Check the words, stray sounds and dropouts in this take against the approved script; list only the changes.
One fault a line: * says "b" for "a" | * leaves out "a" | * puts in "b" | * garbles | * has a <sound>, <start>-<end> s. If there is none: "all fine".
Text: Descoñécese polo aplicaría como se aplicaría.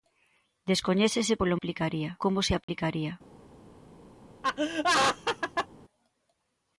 * has a dropout, 2.6-2.7 s
* has a laugh, 4.4-5.7 s